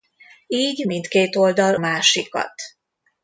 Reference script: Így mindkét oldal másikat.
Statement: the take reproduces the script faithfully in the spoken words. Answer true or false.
true